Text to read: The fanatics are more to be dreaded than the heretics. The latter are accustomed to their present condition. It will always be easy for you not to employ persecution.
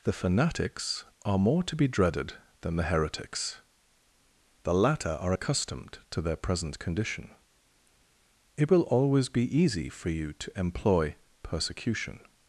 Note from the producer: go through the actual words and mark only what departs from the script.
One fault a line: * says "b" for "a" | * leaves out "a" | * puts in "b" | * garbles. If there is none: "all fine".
* leaves out "not"